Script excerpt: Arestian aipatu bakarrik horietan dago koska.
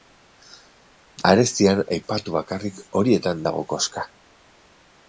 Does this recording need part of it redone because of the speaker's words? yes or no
no